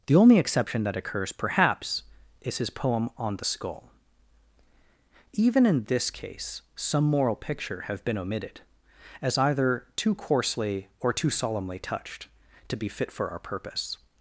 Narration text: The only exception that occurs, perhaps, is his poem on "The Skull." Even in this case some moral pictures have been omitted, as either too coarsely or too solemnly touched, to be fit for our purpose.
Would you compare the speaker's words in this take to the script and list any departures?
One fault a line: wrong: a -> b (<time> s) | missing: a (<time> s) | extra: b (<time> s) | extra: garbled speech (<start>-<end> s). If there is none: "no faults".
wrong: pictures -> picture (7.4 s)